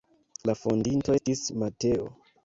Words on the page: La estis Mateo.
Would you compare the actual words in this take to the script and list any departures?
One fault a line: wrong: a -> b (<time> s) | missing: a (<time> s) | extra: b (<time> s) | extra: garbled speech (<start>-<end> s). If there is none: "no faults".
extra: fondinto (0.6 s)